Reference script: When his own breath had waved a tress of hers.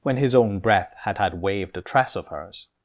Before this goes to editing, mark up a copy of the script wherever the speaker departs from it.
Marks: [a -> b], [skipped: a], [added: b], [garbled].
When his own breath had [added: had] waved a tress of hers.